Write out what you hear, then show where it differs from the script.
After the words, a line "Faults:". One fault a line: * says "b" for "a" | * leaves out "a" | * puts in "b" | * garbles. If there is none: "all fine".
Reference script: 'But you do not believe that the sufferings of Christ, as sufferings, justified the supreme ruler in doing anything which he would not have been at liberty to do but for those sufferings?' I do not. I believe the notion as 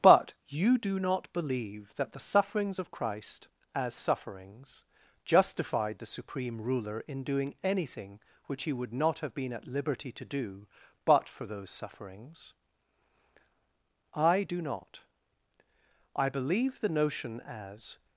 'But you do not believe that the sufferings of Christ, as sufferings, justified the supreme ruler in doing anything which he would not have been at liberty to do but for those sufferings?' I do not. I believe the notion as
Faults:
all fine